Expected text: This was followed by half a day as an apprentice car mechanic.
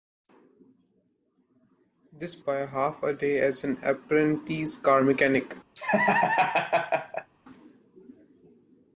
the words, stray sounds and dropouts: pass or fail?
fail